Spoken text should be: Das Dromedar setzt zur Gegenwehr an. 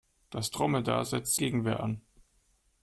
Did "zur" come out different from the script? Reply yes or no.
yes